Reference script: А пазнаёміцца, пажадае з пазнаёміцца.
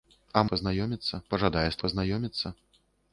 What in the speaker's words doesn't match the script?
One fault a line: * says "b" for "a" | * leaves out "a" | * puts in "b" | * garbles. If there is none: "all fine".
all fine